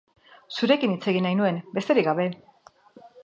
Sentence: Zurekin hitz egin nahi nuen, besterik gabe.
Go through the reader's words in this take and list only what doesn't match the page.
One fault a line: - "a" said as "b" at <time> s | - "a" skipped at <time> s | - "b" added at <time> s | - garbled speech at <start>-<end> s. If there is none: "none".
none